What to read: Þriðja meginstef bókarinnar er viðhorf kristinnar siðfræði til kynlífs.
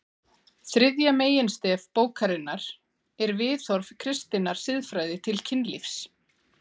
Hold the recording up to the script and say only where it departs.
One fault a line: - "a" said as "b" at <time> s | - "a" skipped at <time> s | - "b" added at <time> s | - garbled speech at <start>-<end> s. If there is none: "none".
none